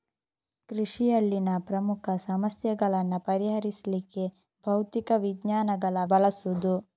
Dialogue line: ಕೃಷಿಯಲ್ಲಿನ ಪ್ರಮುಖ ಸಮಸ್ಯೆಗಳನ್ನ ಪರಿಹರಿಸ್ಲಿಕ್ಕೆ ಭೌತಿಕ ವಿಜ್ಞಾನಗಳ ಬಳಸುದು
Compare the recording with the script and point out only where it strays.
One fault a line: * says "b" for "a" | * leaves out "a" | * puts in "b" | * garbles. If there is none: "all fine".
all fine